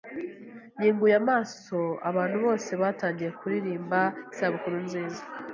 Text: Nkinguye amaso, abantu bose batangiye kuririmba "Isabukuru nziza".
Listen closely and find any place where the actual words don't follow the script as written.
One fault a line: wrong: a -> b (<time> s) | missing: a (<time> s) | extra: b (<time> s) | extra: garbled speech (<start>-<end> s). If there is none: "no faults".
no faults